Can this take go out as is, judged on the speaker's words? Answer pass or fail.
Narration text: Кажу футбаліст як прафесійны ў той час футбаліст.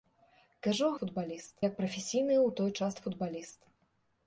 pass